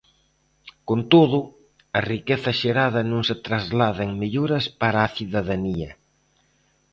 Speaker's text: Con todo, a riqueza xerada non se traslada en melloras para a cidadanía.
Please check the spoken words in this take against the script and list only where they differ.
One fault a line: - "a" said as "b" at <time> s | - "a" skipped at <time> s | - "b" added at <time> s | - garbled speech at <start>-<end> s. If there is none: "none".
none